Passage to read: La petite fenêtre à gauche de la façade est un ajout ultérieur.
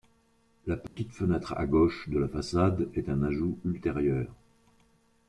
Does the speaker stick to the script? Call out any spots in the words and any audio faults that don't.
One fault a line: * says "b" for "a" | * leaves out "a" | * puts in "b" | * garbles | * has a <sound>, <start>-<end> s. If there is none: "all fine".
* has a dropout, 0.9-1.0 s